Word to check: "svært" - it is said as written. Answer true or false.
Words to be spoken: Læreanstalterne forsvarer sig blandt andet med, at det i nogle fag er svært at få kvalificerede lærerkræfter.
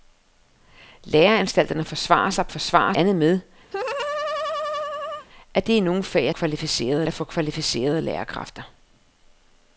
false